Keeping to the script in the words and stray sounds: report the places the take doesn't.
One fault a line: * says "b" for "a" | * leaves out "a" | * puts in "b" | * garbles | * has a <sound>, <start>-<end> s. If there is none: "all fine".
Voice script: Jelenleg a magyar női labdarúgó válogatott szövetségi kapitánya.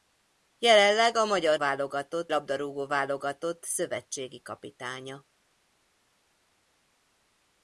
* says "válogatott" for "női"